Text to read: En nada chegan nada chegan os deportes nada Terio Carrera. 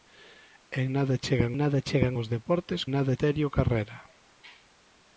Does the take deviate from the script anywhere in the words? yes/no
no